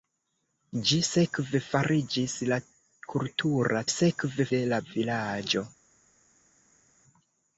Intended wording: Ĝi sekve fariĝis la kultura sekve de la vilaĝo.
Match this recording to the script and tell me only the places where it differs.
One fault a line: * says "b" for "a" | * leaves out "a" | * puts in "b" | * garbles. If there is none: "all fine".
all fine